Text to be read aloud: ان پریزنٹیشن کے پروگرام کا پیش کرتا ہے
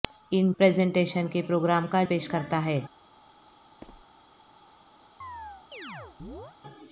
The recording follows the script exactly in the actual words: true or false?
true